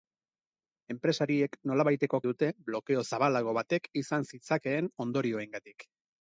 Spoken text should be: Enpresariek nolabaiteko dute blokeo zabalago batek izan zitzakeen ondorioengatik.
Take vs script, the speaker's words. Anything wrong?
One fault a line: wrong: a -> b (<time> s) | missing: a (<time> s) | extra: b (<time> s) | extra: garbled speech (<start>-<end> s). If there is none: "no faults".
no faults